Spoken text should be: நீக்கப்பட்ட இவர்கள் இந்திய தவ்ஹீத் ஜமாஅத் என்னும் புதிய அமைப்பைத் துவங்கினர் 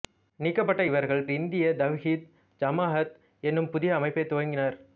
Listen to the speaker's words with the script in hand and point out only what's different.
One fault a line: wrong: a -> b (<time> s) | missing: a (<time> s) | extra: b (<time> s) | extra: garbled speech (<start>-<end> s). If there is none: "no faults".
no faults